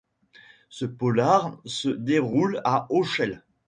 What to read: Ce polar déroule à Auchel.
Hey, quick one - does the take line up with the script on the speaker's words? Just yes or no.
no